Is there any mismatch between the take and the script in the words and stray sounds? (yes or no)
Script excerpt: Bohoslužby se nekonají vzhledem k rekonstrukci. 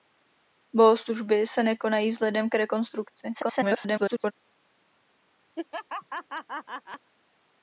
yes